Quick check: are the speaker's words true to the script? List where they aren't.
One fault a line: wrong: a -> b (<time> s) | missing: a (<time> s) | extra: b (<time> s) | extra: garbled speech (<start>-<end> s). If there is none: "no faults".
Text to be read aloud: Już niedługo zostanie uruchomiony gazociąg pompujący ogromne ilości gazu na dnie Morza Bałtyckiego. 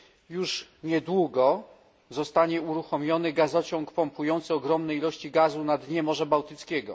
no faults